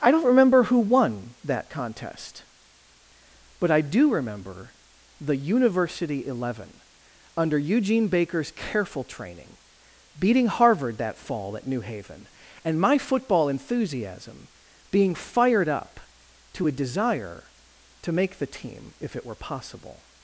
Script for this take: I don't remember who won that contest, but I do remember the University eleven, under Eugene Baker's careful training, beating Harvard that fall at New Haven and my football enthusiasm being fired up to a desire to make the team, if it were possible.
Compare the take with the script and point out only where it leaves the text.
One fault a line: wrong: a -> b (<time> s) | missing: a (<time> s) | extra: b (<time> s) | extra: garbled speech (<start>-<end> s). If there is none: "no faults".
no faults